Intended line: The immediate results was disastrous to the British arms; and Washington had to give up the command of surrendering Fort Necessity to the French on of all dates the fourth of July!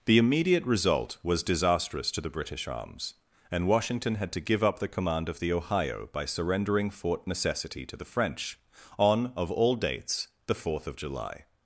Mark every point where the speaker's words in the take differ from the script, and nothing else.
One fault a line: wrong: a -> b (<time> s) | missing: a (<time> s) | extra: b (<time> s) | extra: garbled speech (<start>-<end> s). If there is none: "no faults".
wrong: results -> result (0.7 s)
extra: the Ohio by (5.4 s)